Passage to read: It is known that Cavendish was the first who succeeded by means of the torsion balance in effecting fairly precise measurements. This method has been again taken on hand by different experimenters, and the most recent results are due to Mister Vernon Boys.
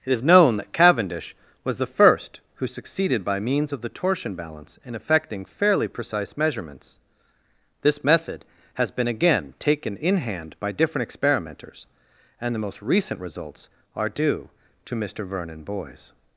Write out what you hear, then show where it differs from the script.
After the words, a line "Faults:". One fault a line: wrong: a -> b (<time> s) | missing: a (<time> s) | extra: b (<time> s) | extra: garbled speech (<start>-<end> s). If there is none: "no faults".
It is known that Cavendish was the first who succeeded by means of the torsion balance in effecting fairly precise measurements. This method has been again taken in hand by different experimenters, and the most recent results are due to Mister Vernon Boys.
Faults:
wrong: on -> in (10.0 s)